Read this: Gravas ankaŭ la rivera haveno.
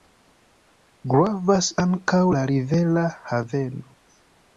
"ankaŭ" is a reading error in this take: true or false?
false